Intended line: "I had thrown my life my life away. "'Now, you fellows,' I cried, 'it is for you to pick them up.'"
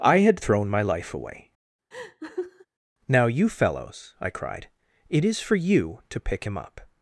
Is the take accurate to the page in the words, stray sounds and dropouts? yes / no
no